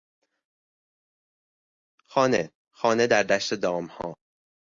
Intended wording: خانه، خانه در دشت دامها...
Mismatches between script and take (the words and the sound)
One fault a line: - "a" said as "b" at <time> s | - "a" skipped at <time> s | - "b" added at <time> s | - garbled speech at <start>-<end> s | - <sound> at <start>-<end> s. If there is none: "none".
none